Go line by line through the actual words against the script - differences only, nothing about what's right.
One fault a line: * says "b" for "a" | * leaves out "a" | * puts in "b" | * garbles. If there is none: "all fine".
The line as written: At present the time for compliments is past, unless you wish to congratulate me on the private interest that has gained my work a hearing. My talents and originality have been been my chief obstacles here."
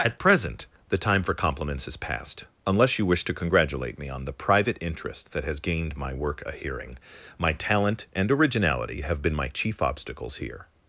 * says "talent" for "talents"
* leaves out "been"